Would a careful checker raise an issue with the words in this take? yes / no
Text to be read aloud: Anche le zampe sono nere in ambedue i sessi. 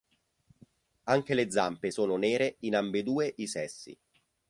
no